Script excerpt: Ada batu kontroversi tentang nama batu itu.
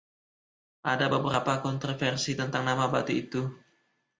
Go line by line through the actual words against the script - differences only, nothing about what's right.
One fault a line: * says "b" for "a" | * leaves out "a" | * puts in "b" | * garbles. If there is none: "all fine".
* says "beberapa" for "batu"